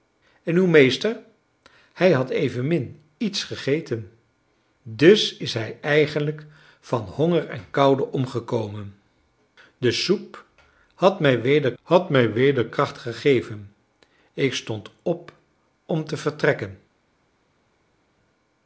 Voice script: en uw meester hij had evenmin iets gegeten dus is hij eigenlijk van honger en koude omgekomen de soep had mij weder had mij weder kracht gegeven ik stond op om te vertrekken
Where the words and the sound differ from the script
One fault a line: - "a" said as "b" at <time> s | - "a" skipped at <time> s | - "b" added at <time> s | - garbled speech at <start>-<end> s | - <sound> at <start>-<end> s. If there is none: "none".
none